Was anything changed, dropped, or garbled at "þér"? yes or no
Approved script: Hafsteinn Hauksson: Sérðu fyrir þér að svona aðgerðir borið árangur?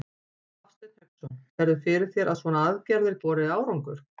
no